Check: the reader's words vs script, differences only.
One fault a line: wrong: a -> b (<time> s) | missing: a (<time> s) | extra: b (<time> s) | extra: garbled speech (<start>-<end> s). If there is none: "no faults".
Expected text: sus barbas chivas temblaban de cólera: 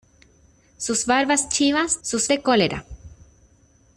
wrong: temblaban -> sus (2.0 s)